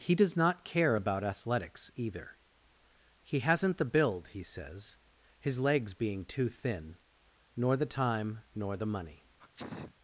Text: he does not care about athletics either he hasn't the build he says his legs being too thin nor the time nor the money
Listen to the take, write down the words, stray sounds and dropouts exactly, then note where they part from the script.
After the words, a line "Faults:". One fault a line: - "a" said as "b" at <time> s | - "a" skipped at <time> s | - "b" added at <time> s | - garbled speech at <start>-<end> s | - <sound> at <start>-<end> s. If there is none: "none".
he does not care about athletics either he hasn't the build he says his legs being too thin nor the time nor the money
Faults:
- sneeze at 9.4-9.9 s